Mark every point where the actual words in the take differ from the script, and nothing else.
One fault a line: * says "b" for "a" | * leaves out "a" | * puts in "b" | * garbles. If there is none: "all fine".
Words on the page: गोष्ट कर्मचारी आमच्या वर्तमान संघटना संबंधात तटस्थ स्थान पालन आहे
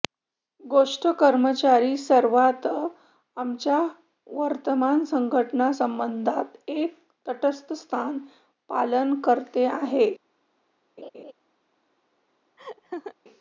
* puts in "सर्वात"
* puts in "एक"
* puts in "करते"